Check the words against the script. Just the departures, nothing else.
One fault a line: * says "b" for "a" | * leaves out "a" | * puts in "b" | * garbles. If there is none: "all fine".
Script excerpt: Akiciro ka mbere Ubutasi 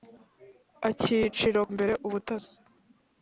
* leaves out "ka"